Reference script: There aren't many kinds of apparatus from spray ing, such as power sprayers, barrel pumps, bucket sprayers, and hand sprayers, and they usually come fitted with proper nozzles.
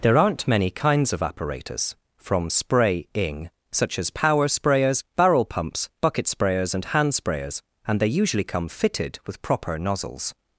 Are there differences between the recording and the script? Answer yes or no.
no